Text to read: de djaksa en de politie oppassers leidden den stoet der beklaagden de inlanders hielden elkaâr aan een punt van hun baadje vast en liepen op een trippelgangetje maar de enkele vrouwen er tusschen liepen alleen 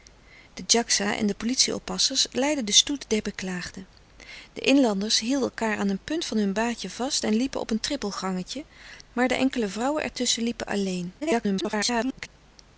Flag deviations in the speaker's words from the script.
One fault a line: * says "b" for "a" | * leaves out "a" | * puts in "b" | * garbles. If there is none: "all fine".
* garbles